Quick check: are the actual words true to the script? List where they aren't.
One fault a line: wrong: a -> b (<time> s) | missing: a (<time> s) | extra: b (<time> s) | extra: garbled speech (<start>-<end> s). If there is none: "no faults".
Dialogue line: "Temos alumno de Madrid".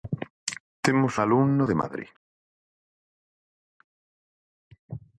no faults